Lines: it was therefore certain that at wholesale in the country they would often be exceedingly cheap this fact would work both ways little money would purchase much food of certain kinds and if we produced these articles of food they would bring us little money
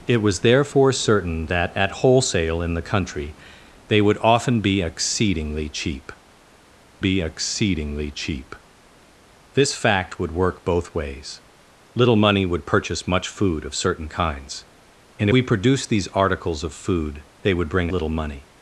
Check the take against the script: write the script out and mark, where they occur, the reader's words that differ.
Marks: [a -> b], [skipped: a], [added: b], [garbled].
it was therefore certain that at wholesale in the country they would often be exceedingly cheap [added: be exceedingly cheap] this fact would work both ways little money would purchase much food of certain kinds and [skipped: if] we produced these articles of food they would bring [skipped: us] little money